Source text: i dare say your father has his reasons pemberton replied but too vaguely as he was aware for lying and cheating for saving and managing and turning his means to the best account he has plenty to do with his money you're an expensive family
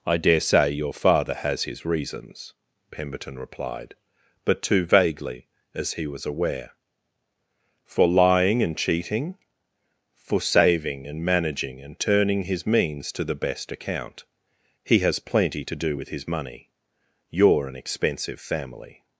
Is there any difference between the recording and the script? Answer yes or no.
no